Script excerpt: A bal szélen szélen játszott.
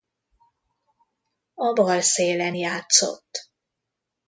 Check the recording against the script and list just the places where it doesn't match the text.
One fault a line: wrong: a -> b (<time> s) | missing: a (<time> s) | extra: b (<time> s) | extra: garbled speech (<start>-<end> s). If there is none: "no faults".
missing: szélen (2.6 s)